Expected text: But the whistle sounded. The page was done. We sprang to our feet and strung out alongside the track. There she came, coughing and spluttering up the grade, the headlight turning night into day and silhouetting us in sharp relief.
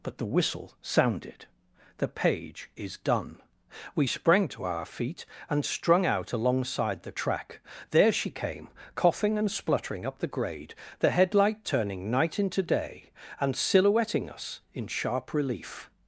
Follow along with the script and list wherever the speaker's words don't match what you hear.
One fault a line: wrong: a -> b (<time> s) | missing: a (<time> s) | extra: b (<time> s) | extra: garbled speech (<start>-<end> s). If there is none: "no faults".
wrong: was -> is (2.8 s)